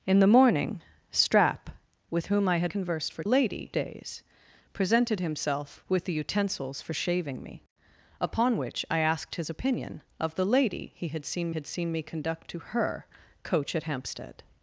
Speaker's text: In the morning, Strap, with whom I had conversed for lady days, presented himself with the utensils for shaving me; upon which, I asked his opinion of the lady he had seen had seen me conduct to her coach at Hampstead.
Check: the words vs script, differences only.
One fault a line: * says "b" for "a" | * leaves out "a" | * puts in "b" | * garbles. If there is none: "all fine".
all fine